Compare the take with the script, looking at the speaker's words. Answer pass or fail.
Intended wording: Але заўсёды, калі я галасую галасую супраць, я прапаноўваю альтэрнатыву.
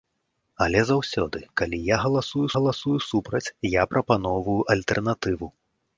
pass